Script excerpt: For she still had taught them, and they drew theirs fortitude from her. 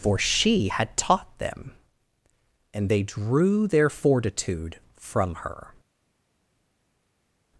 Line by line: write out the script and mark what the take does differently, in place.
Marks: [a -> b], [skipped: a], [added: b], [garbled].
For she [skipped: still] had taught them, and they drew [theirs -> their] fortitude from her.